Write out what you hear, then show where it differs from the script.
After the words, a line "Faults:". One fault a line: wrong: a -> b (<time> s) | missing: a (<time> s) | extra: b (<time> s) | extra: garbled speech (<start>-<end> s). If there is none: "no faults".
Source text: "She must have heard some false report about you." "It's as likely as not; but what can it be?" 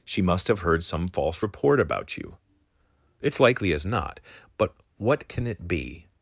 "She must have heard some false report about you." "It's likely as not; but what can it be?"
Faults:
missing: as (3.4 s)